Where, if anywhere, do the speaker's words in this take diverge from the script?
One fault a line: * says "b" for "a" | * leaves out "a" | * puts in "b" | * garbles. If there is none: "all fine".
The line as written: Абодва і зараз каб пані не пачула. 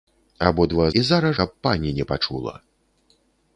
all fine